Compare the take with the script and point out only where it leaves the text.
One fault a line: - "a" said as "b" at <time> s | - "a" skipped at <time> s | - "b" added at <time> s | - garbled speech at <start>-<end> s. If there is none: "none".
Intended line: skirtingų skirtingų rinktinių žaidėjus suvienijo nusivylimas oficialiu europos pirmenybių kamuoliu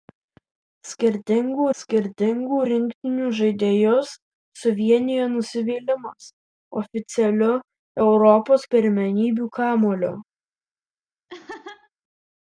none